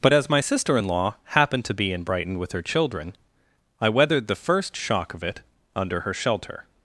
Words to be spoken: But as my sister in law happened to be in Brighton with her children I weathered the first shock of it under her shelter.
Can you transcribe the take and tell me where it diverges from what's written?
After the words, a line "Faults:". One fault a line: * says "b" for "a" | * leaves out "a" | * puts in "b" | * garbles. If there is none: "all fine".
But as my sister in law happened to be in Brighton with her children I weathered the first shock of it under her shelter.
Faults:
all fine